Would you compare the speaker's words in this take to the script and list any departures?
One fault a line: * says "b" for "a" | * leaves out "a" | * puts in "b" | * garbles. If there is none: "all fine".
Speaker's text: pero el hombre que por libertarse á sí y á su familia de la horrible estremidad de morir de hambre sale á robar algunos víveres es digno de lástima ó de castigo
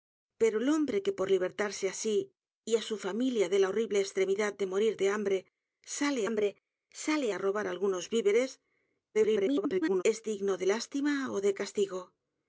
* puts in "hambre sale"
* garbles